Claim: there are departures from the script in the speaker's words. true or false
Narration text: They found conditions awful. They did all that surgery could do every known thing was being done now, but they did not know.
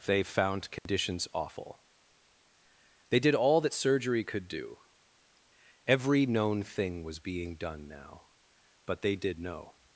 true